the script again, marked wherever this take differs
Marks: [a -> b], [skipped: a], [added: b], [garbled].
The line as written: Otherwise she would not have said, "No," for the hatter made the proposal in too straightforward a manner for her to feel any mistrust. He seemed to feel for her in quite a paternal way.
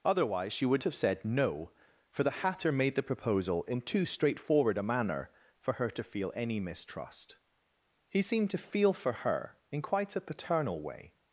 Otherwise she would [skipped: not] have said, "No," for the hatter made the proposal in too straightforward a manner for her to feel any mistrust. He seemed to feel for her in quite a paternal way.